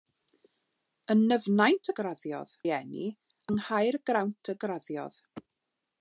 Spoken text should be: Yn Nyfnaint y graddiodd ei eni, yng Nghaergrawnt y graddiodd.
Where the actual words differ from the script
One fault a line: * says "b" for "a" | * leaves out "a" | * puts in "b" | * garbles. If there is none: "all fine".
all fine